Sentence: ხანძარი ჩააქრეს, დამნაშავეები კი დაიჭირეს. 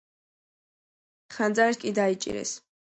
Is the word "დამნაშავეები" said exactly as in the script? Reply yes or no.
no